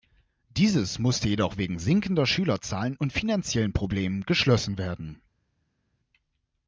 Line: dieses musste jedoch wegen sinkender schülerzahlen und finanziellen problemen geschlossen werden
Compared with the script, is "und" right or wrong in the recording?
right